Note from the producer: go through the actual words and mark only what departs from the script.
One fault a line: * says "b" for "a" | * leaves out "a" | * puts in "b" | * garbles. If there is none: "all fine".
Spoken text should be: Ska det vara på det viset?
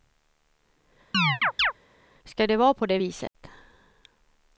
all fine